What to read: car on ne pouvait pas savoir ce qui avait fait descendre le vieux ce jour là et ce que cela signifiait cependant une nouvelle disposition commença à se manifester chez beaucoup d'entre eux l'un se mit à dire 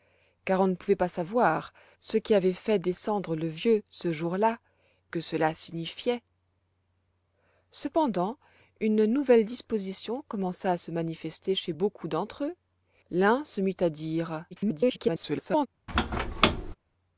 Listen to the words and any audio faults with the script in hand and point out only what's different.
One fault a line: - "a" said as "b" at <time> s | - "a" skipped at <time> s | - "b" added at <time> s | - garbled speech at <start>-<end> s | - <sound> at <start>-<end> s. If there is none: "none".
- "et ce" skipped at 4.6 s
- garbled speech at 14.5-15.7 s
- squeak at 15.9-16.8 s